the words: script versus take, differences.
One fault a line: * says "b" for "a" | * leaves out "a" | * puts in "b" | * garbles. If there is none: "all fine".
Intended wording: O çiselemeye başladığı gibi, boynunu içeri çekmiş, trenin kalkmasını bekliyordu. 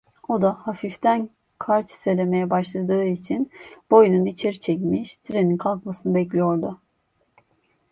* puts in "da hafiften kar"
* says "için" for "gibi"